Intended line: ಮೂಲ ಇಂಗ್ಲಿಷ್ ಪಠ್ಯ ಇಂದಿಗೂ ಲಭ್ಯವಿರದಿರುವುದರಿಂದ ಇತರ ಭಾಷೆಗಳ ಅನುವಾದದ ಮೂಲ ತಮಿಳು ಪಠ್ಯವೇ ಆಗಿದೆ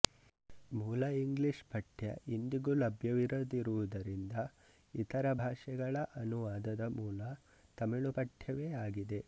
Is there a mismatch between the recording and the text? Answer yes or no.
no